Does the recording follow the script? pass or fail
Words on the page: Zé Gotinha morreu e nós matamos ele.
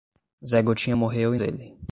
fail